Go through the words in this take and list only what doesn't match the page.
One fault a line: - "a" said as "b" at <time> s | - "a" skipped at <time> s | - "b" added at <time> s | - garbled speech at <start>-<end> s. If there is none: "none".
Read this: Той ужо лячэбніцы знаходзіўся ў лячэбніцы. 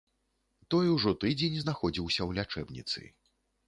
- "лячэбніцы" said as "тыдзень" at 1.2 s